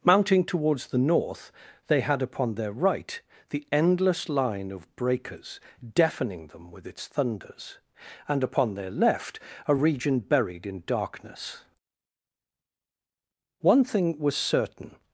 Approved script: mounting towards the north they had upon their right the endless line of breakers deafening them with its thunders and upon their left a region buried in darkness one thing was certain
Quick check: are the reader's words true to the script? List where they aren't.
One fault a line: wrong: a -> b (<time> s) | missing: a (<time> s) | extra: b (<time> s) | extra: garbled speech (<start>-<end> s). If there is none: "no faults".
no faults